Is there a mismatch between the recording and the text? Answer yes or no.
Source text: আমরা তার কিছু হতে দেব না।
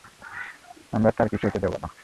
no